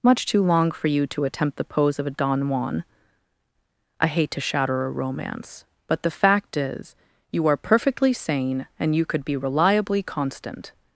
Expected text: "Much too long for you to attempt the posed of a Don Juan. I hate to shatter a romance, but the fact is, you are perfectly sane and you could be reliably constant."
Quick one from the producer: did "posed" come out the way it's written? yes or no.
no